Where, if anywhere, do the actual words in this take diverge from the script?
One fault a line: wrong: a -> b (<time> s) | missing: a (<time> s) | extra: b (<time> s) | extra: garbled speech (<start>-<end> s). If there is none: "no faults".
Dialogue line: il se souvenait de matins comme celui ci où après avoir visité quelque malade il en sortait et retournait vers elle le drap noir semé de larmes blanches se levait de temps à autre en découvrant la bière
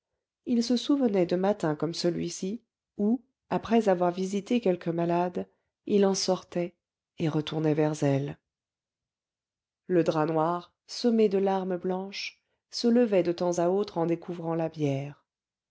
no faults